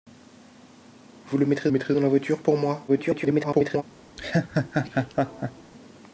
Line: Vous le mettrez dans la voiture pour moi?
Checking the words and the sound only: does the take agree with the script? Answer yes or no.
no